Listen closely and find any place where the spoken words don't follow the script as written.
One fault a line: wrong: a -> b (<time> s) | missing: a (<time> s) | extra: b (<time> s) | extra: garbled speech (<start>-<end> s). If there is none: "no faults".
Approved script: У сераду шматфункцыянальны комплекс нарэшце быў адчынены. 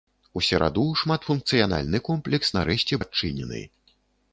missing: быў (3.0 s)